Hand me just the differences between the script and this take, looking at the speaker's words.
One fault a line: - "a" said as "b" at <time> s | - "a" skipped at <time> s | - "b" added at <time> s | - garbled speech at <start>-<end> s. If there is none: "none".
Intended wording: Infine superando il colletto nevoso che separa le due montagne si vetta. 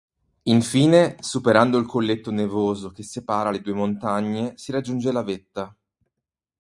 - "raggiunge la" added at 4.7 s